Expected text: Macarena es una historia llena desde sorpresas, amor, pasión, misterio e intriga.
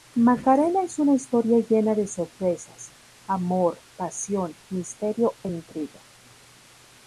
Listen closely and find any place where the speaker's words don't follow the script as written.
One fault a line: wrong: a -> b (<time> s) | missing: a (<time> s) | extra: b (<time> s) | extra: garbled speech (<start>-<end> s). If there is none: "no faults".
wrong: desde -> de (1.9 s)